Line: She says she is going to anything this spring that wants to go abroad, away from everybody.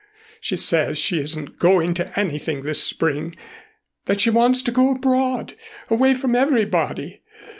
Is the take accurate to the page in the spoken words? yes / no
no